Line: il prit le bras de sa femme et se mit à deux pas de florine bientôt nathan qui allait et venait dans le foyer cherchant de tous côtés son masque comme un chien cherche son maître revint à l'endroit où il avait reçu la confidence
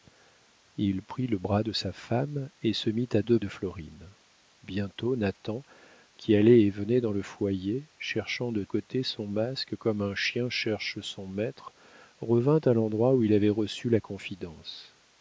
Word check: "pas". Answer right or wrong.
wrong